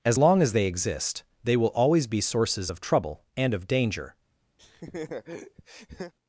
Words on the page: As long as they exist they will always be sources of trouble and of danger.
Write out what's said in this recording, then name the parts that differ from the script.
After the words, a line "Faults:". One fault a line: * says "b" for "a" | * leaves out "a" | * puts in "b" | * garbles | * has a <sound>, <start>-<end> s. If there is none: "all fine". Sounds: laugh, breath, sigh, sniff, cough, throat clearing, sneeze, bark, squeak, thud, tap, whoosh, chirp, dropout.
As long as they exist they will always be sources of trouble and of danger.
Faults:
* has a laugh, 4.6-6.1 s